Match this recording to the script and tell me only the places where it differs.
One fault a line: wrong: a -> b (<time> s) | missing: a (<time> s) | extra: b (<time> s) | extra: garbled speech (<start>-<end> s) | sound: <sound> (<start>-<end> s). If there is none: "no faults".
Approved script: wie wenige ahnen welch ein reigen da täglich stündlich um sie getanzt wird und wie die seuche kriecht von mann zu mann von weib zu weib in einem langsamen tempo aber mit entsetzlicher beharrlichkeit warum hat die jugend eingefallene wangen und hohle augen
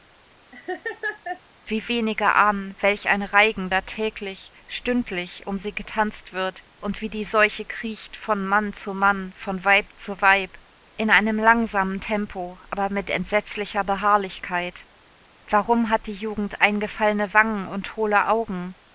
sound: laugh (0.5-1.4 s)